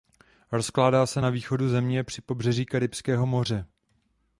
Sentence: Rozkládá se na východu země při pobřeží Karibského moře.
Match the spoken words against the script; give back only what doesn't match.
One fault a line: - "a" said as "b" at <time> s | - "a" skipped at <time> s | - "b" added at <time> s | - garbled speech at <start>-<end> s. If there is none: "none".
none